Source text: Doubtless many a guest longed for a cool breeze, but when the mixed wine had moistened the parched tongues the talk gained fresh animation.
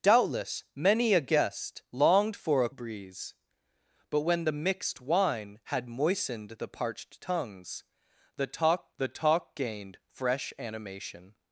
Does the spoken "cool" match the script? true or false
false